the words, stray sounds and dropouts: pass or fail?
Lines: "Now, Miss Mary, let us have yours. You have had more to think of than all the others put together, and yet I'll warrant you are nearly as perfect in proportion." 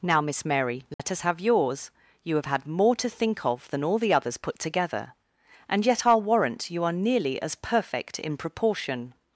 fail